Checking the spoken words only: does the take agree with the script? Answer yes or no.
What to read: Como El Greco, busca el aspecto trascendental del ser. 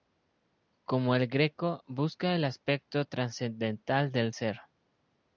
yes